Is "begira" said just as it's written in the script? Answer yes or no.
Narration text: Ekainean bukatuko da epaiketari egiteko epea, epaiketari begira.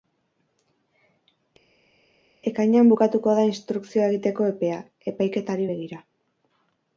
yes